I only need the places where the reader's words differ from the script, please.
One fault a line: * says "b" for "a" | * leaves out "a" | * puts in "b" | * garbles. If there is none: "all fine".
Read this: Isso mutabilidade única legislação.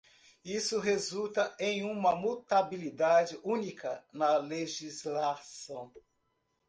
* puts in "resulta em uma"
* puts in "na"